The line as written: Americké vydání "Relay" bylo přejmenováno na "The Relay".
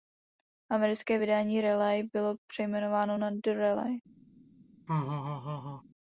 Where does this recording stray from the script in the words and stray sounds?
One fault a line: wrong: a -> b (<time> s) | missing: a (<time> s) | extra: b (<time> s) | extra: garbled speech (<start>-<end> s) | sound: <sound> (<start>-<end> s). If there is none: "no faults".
sound: laugh (4.9-5.8 s)